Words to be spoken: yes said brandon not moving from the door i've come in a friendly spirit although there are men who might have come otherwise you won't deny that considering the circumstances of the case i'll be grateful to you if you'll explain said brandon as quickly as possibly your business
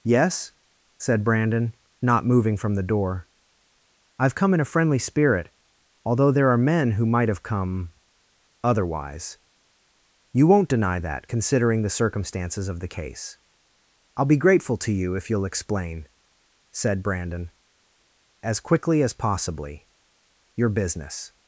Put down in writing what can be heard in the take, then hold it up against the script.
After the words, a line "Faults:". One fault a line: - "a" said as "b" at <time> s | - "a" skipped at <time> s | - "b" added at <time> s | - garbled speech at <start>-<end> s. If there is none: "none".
yes said brandon not moving from the door i've come in a friendly spirit although there are men who might have come otherwise you won't deny that considering the circumstances of the case i'll be grateful to you if you'll explain said brandon as quickly as possibly your business
Faults:
none